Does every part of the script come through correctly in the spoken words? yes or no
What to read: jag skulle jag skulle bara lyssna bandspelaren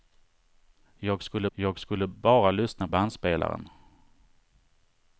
yes